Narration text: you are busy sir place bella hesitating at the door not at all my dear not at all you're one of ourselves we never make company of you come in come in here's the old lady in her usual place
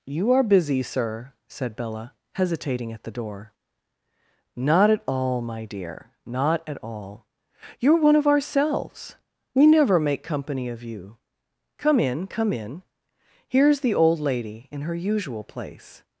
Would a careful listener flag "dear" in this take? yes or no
no